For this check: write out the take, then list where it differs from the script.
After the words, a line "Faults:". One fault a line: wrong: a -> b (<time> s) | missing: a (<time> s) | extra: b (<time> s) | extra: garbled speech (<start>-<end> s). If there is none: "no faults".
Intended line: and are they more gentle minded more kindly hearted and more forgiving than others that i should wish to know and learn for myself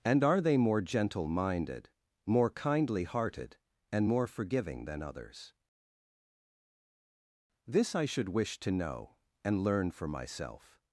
and are they more gentle minded more kindly hearted and more forgiving than others this i should wish to know and learn for myself
Faults:
wrong: that -> this (7.7 s)